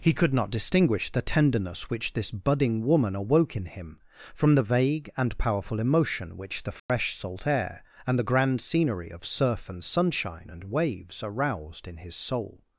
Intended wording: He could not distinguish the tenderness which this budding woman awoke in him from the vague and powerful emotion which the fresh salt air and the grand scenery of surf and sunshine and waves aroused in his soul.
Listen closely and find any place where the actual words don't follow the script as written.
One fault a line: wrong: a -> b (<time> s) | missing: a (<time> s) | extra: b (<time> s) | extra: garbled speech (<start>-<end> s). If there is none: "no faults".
no faults